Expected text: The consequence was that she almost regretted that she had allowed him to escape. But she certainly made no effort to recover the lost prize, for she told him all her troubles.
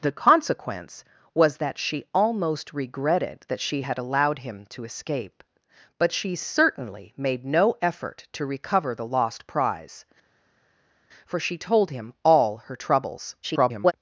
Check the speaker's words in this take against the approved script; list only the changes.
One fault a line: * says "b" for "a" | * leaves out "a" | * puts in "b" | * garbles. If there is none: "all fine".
* garbles